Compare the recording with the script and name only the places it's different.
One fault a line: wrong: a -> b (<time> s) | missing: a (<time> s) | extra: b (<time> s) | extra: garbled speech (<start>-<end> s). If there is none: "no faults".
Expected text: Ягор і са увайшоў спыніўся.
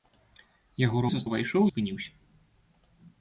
no faults